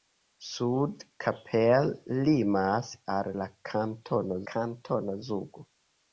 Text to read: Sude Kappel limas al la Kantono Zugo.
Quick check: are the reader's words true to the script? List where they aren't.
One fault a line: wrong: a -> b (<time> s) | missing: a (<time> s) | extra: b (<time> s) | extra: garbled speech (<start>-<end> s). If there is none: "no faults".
extra: Kantono (4.5 s)